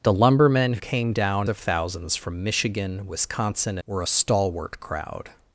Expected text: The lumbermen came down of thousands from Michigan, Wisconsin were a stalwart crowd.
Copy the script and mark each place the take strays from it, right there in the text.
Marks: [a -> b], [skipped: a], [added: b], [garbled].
The lumbermen came down of thousands from Michigan, Wisconsin were a stalwart crowd.